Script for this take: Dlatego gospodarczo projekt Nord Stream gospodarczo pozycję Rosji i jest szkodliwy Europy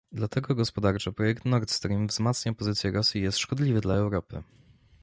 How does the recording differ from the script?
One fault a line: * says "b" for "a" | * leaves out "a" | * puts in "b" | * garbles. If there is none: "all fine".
* says "wzmacnia" for "gospodarczo"
* puts in "dla"